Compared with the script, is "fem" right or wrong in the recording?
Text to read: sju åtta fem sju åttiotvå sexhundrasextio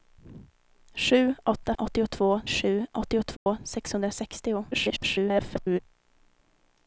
wrong